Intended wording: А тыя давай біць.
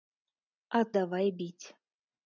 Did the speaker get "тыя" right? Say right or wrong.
wrong